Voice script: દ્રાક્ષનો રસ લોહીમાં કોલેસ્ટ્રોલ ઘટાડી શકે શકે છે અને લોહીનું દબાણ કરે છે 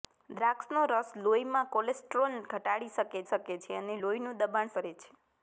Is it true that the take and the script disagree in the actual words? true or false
false